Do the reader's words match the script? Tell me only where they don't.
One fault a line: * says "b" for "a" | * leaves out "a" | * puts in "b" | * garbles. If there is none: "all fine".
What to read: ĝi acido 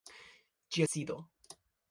all fine